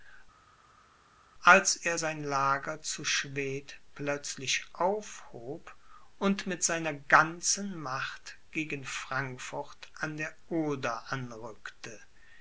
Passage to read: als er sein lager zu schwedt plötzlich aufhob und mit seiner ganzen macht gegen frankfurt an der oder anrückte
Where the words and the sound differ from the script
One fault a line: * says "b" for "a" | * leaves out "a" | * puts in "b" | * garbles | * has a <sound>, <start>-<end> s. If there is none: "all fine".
all fine